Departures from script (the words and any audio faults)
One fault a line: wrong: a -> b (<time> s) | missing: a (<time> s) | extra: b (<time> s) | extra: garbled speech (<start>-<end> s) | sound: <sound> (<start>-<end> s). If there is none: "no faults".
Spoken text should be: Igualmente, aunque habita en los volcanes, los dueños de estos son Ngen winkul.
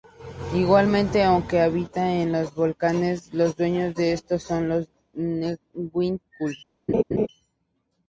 extra: los (4.7 s)
sound: laugh (6.9-7.3 s)